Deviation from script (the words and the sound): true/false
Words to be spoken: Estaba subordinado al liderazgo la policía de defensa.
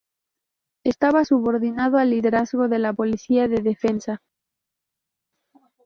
true